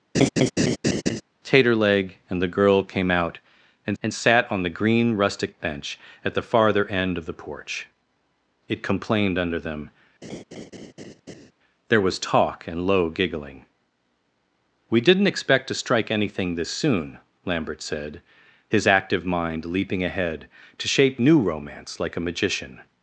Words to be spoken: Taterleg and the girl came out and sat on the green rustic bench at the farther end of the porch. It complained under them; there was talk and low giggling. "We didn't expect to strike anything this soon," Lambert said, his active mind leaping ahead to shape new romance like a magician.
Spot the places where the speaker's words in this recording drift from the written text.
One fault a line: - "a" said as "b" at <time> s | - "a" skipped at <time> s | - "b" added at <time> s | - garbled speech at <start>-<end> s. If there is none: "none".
- "and" added at 4.0 s